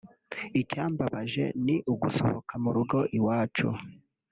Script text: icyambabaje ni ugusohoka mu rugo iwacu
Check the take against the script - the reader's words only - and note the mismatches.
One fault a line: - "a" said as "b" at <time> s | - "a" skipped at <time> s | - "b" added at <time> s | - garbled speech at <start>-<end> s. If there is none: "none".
none